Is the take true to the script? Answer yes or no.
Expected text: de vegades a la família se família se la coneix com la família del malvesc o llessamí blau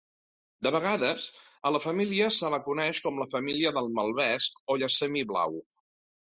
no